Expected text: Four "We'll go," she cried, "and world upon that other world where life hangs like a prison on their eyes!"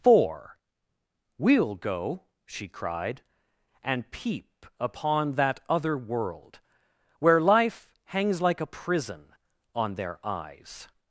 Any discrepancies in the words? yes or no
yes